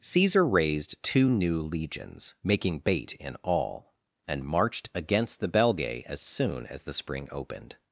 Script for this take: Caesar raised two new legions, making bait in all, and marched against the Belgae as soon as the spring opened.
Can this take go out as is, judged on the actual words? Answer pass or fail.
pass